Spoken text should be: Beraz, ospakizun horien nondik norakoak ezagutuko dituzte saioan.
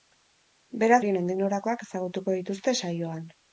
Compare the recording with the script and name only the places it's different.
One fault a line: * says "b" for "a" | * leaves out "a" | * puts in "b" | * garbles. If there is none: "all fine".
* leaves out "ospakizun"